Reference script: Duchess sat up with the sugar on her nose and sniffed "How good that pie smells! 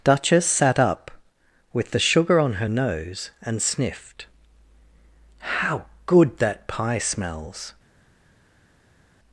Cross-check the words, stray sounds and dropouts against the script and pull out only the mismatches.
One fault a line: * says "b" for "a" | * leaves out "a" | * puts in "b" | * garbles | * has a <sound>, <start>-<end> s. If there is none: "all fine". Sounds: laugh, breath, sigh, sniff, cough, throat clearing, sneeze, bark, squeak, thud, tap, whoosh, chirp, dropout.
all fine